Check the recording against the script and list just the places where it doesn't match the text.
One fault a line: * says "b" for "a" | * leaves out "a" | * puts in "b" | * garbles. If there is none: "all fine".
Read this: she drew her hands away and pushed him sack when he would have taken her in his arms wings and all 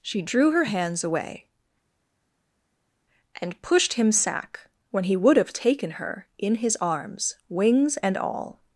all fine